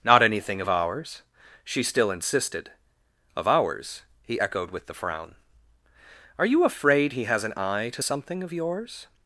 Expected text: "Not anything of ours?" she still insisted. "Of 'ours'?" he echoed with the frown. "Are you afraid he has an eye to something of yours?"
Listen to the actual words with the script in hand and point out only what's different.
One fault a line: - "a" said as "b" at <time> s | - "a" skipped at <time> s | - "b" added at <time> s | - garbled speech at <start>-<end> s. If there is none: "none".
none